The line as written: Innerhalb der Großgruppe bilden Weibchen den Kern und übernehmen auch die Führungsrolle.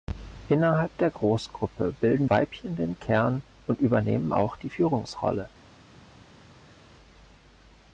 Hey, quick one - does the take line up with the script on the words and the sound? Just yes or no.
yes